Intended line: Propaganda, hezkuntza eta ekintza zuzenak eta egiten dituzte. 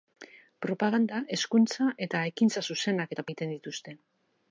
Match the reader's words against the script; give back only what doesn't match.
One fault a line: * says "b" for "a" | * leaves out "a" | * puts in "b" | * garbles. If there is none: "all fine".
all fine